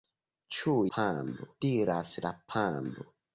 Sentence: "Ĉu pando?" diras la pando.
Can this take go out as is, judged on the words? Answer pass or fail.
pass